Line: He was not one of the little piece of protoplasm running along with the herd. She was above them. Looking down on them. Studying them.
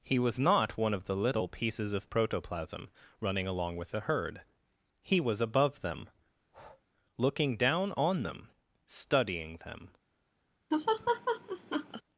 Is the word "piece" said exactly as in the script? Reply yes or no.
no